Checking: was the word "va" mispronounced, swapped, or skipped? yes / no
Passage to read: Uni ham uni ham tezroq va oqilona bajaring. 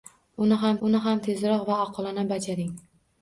no